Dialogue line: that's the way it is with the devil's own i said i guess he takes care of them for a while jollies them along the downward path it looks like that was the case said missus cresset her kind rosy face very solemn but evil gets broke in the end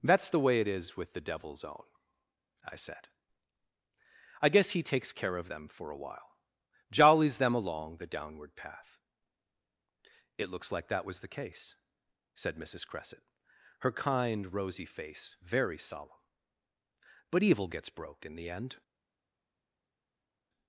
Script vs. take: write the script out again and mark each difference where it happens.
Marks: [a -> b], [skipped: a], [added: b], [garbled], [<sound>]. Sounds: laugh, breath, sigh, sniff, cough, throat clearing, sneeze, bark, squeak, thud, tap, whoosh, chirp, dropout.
that's the way it is with the devil's own i said i guess he takes care of them for a while jollies them along the downward path it looks like that was the case said missus cresset her kind rosy face very solemn but evil gets broke in the end